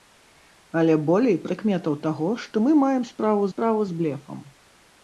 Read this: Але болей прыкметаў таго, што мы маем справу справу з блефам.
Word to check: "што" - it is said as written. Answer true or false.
true